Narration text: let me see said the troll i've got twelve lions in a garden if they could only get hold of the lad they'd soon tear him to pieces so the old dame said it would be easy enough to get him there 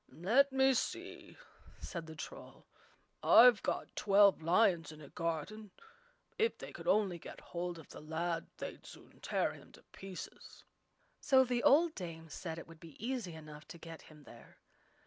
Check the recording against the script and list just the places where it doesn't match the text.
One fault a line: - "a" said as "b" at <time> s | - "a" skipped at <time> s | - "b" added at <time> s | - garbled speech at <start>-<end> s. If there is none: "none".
none